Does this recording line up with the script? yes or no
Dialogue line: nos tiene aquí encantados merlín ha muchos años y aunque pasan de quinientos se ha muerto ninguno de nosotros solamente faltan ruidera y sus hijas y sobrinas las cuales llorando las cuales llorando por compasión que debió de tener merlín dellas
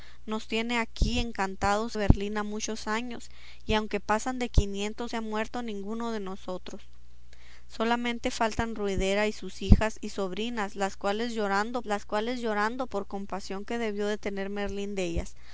yes